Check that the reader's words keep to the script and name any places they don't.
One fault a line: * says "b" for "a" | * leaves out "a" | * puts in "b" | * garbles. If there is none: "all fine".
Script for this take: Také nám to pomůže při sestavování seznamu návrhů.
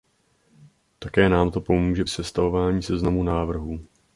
* leaves out "při"